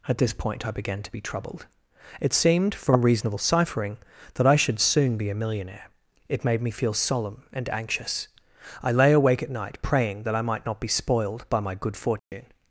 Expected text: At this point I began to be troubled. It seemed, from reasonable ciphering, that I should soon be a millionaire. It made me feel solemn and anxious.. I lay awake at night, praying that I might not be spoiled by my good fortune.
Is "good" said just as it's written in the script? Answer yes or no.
yes